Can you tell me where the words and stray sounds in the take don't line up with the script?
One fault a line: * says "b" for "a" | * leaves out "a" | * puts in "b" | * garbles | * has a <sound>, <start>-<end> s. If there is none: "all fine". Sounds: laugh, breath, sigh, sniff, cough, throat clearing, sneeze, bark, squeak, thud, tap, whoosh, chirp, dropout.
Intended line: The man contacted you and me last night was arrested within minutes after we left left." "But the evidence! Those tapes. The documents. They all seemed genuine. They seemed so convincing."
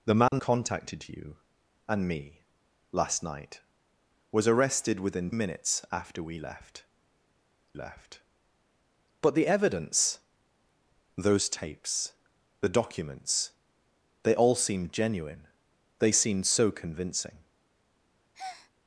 * has a dropout, 0.3-0.3 s
* has a breath, 18.3-18.7 s